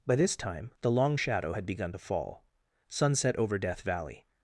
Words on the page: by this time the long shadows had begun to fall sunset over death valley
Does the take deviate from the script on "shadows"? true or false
true